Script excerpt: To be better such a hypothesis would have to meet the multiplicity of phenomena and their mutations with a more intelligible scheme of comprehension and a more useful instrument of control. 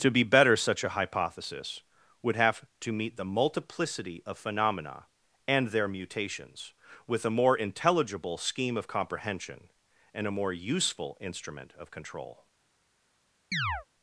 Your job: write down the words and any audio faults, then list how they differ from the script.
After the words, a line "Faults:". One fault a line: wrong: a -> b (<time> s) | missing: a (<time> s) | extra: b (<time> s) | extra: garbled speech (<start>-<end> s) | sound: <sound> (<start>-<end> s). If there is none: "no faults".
To be better such a hypothesis would have to meet the multiplicity of phenomena and their mutations with a more intelligible scheme of comprehension and a more useful instrument of control.
Faults:
sound: chirp (13.5-13.9 s)